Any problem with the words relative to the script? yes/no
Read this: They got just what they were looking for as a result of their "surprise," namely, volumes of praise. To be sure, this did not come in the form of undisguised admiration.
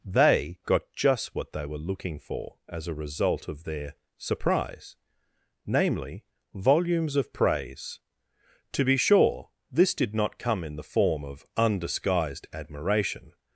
no